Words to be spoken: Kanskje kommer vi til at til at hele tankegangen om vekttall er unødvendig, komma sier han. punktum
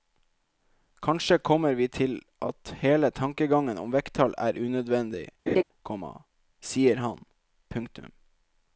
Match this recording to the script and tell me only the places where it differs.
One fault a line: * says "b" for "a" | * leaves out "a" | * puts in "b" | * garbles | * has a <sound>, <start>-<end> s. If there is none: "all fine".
* leaves out "til at"
* has a laugh, 5.5-5.6 s